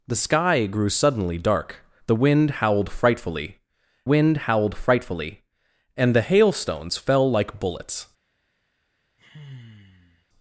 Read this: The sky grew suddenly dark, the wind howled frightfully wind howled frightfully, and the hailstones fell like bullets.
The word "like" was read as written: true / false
true